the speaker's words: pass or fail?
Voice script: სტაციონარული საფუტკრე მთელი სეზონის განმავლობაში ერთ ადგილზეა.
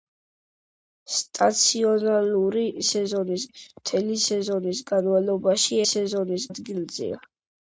fail